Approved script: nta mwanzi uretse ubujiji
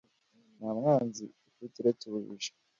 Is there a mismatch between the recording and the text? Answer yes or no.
yes